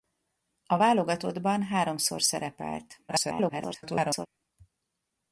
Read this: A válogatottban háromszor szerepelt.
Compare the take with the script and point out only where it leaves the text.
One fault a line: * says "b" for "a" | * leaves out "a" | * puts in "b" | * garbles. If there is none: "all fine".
* garbles